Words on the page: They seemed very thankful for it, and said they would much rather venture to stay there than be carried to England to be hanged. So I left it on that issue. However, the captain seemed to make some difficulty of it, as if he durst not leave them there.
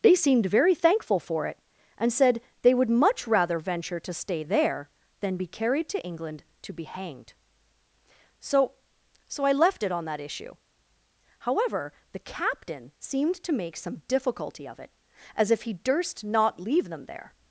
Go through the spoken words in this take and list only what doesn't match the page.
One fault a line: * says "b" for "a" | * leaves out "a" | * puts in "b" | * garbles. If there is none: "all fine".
* puts in "So"